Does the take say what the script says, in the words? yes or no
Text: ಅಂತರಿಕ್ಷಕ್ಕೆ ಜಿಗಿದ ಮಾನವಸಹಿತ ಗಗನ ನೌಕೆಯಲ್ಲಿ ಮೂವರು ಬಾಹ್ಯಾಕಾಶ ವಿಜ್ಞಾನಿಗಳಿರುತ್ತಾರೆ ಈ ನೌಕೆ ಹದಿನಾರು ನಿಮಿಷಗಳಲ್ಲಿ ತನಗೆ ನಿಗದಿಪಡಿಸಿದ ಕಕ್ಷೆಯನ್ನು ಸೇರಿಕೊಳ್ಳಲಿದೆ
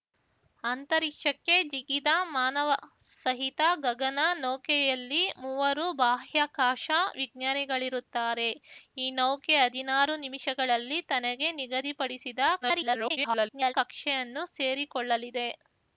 no